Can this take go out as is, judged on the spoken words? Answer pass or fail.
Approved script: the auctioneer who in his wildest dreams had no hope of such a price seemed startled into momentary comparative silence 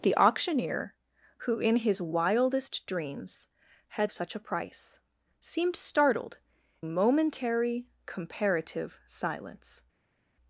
fail